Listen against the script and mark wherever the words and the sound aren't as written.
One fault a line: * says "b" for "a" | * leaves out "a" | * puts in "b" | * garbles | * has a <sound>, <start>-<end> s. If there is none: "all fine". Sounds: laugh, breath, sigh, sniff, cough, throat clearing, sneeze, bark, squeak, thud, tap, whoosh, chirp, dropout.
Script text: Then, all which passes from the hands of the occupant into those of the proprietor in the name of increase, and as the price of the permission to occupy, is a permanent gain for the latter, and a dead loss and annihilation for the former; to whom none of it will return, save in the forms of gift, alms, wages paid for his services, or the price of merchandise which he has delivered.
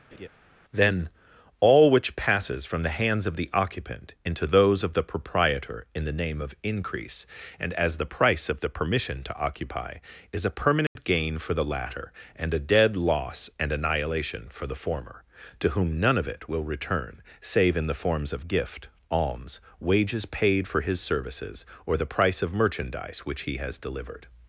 * has a laugh, 0.1-0.3 s
* has a dropout, 10.9-11.0 s